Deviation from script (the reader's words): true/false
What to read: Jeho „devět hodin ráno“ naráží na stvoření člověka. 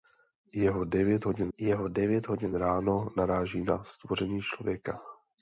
true